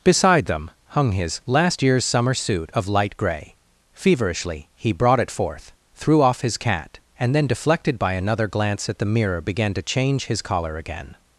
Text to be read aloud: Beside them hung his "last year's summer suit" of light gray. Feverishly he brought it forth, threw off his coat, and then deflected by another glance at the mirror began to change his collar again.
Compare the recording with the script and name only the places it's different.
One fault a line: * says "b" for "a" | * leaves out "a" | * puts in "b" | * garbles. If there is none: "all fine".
* says "cat" for "coat"